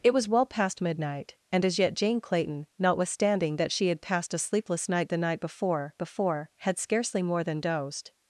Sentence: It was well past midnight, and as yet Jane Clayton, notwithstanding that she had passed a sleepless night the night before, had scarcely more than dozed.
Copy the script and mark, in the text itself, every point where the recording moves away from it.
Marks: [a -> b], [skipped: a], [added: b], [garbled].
It was well past midnight, and as yet Jane Clayton, notwithstanding that she had passed a sleepless night the night before, [added: before] had scarcely more than dozed.